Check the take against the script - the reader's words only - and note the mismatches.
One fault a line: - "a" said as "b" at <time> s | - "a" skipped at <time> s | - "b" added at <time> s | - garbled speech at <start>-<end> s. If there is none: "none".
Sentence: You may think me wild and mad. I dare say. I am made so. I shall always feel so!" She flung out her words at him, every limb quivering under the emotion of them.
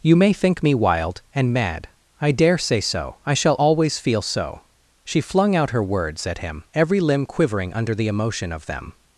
- "I am made" skipped at 2.8 s